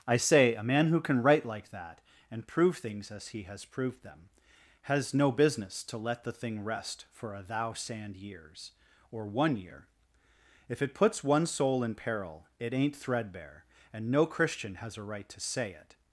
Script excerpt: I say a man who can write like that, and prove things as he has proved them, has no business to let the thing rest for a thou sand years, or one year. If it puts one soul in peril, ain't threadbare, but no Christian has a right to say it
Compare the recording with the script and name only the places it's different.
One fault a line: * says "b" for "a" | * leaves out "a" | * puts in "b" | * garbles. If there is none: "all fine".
* puts in "it"
* says "and" for "but"